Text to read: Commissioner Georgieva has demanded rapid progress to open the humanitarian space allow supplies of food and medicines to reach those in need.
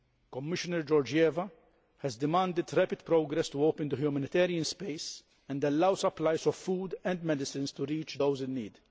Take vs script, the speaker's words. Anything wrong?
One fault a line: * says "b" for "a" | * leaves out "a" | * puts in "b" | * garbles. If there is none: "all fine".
* puts in "and"